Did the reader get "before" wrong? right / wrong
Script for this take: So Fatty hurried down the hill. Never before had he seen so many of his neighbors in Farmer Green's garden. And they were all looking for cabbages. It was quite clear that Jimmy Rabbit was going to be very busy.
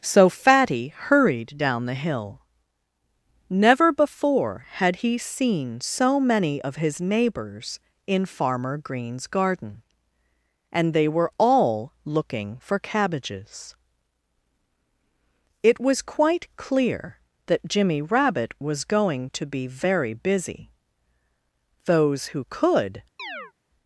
right